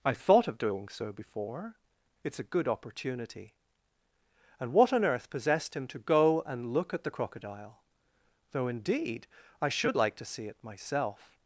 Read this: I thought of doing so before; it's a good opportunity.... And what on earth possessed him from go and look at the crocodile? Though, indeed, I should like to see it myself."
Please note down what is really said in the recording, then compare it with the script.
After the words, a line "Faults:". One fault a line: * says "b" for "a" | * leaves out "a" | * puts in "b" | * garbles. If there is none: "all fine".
I thought of doing so before; it's a good opportunity.... And what on earth possessed him to go and look at the crocodile? Though, indeed, I should like to see it myself."
Faults:
* says "to" for "from"